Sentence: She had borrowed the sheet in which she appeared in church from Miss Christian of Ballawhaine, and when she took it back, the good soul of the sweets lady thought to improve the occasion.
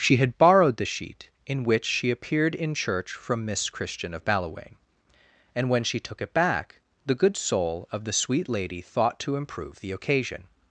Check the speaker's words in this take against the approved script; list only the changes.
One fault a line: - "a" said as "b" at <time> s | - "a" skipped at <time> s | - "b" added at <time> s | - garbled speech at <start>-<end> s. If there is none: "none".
- "sweets" said as "sweet" at 8.1 s